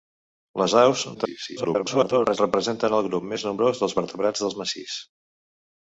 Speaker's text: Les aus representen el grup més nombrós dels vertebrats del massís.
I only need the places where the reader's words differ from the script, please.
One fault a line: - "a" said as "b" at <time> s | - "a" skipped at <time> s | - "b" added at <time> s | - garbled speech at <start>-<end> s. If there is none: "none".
- garbled speech at 1.1-2.4 s